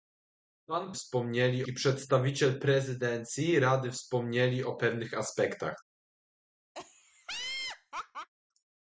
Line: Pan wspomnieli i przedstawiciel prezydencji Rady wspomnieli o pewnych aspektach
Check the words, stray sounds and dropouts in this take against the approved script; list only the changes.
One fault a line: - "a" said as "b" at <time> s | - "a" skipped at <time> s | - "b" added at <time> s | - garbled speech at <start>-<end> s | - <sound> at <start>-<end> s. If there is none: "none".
- laugh at 6.7-8.3 s